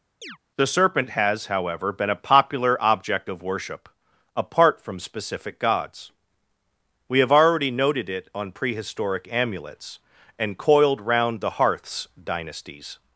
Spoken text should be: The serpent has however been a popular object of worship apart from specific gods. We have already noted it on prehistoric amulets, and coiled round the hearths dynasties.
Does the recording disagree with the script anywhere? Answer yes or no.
no